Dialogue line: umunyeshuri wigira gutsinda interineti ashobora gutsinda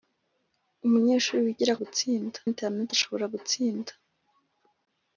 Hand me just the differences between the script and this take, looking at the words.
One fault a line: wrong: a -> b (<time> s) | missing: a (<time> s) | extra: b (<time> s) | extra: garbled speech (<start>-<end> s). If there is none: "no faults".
no faults